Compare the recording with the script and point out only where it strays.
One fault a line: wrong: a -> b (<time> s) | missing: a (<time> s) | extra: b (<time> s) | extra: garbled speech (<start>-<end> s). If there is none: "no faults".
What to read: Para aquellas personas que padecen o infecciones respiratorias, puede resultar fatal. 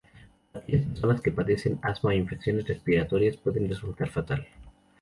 extra: asma (1.8 s)